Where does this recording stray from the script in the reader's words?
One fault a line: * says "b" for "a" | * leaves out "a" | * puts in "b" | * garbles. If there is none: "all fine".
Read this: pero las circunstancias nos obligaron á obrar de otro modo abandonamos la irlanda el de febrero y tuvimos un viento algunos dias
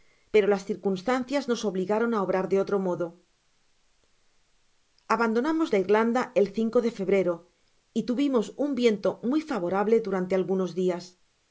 * puts in "muy favorable durante"